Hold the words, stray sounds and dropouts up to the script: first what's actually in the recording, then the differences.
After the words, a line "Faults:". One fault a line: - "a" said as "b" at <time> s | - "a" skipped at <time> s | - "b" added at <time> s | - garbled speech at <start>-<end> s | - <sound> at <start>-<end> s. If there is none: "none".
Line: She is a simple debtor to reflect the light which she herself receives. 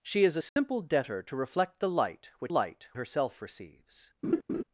She is a simple debtor to reflect the light which light herself receives.
Faults:
- dropout at 0.5-0.6 s
- "she" said as "light" at 2.5 s
- laugh at 4.2-4.6 s